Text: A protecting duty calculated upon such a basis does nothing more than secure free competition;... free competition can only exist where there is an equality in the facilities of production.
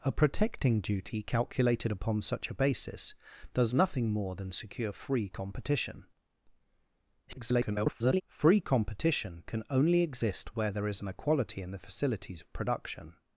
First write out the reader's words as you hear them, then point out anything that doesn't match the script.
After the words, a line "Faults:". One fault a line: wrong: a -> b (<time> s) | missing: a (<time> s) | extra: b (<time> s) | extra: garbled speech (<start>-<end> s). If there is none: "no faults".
A protecting duty calculated upon such a basis does nothing more than secure free competition;... [garbled] free competition can only exist where there is an equality in the facilities of production.
Faults:
extra: garbled speech (7.3-8.2 s)